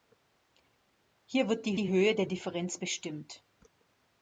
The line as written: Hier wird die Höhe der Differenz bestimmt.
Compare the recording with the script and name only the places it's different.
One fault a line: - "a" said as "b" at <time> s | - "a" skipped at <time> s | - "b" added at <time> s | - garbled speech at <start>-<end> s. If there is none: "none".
- "die" added at 1.8 s